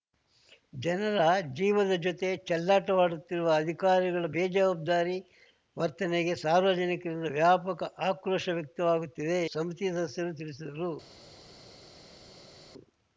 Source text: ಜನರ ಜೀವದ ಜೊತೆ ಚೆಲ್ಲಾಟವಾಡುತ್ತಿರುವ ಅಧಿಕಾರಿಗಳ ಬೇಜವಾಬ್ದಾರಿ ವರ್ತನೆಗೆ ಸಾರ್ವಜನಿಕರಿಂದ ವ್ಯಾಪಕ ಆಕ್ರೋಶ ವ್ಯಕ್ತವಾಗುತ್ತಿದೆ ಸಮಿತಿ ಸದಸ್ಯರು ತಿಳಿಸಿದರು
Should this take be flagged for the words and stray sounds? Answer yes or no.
no